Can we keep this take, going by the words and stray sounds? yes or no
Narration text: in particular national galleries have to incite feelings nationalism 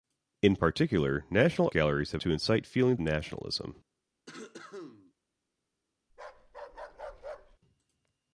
no